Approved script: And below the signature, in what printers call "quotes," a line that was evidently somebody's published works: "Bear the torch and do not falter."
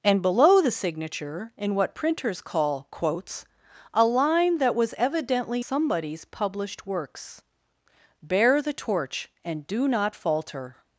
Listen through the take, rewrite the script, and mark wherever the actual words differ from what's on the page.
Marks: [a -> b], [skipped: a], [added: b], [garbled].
And below the signature, in what printers call "quotes," a line that was evidently somebody's published works: "Bear the torch and do not falter."